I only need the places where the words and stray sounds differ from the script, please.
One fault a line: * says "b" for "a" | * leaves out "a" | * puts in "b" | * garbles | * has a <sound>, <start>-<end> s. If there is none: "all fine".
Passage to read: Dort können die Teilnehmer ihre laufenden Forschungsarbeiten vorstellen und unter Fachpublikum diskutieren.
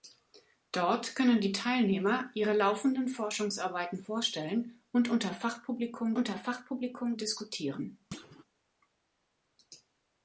* puts in "unter Fachpublikum"
* has a thud, 8.1-8.5 s